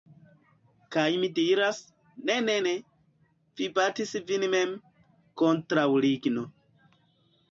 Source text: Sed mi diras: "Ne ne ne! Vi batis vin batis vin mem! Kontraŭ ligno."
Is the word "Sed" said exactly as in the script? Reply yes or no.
no